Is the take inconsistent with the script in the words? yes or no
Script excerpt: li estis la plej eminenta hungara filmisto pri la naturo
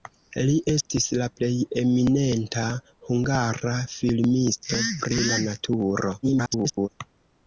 yes